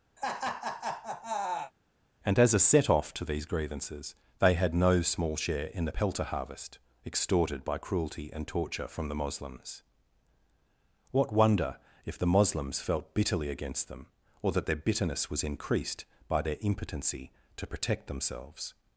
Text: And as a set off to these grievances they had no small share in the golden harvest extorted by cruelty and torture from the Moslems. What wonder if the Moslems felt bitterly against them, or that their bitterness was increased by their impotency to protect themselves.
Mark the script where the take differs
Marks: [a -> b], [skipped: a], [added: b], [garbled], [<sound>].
[laugh] And as a set off to these grievances they had no small share in the [golden -> pelter] harvest extorted by cruelty and torture from the Moslems. What wonder if the Moslems felt bitterly against them, or that their bitterness was increased by their impotency to protect themselves.